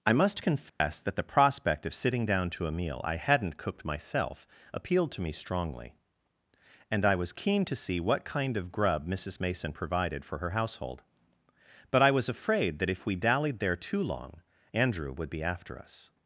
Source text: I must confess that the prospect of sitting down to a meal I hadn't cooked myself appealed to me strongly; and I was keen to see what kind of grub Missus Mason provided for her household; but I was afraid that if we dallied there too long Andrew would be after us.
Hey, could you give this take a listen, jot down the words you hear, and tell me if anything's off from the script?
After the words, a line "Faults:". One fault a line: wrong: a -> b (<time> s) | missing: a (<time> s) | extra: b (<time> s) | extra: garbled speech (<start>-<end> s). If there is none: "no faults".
I must confess that the prospect of sitting down to a meal I hadn't cooked myself appealed to me strongly; and I was keen to see what kind of grub Missus Mason provided for her household; but I was afraid that if we dallied there too long Andrew would be after us.
Faults:
no faults